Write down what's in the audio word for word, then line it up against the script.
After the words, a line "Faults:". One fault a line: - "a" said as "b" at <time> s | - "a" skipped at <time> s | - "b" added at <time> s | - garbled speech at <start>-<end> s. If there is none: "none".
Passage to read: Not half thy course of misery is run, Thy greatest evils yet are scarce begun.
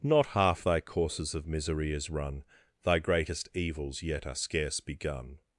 Not half thy courses of misery is run, Thy greatest evils yet are scarce begun.
Faults:
- "course" said as "courses" at 0.8 s